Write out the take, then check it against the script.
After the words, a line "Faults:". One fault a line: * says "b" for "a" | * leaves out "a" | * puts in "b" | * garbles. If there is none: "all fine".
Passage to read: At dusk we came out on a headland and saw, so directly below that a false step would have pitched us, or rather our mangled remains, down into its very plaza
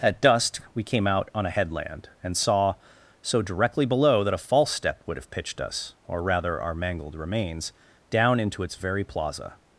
At dusk we came out on a headland and saw, so directly below that a false step would have pitched us, or rather our mangled remains, down into its very plaza
Faults:
all fine